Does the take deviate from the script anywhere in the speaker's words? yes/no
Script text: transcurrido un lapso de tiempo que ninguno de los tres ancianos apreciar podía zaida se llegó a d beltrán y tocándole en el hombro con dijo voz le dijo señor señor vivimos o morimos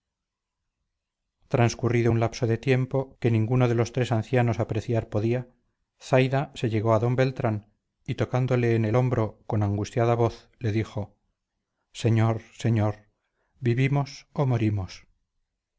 yes